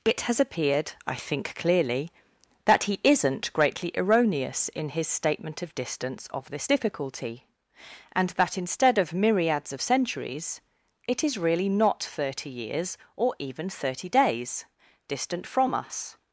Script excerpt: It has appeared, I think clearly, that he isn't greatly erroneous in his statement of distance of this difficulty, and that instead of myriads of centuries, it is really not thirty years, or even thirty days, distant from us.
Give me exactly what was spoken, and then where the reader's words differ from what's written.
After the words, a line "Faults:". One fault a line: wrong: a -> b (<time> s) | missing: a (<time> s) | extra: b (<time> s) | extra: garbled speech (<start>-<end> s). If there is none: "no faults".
It has appeared, I think clearly, that he isn't greatly erroneous in his statement of distance of this difficulty, and that instead of myriads of centuries, it is really not thirty years, or even thirty days, distant from us.
Faults:
no faults